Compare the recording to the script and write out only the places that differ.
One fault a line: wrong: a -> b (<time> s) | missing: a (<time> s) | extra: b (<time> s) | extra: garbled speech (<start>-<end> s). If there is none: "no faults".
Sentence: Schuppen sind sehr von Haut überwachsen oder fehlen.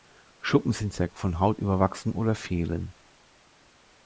no faults